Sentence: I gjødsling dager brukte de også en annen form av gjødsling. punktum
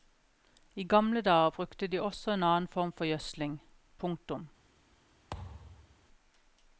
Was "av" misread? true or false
true